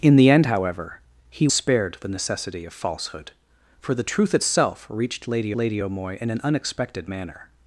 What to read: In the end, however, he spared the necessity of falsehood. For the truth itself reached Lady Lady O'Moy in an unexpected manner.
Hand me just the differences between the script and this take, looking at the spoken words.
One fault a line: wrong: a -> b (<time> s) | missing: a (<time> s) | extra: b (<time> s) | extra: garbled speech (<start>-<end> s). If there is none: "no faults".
no faults